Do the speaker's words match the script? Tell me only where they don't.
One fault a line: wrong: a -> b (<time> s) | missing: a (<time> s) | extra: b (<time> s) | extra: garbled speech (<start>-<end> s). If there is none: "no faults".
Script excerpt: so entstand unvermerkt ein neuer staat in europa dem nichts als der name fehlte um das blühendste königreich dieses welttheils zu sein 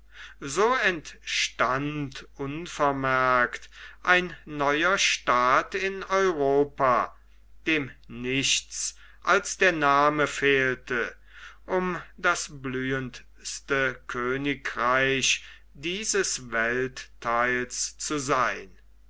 no faults